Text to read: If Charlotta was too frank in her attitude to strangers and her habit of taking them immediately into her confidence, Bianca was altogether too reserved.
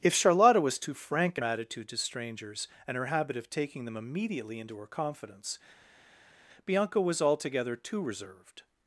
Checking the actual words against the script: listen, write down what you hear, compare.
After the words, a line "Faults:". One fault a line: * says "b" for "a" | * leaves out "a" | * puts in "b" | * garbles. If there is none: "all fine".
If Charlotta was too frank in attitude to strangers and her habit of taking them immediately into her confidence, Bianca was altogether too reserved.
Faults:
* leaves out "her"